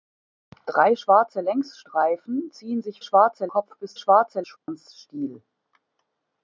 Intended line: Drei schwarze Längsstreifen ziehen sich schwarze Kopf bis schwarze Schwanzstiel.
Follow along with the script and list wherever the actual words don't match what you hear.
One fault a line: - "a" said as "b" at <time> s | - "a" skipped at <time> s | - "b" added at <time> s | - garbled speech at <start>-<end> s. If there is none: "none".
none